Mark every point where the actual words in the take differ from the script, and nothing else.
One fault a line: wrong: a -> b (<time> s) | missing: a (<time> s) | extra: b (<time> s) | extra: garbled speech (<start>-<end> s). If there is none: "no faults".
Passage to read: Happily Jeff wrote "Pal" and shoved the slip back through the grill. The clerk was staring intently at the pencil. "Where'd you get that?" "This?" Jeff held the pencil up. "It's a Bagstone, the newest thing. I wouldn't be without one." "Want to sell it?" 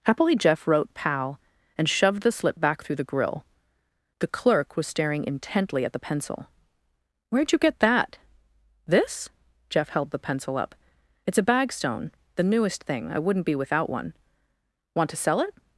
no faults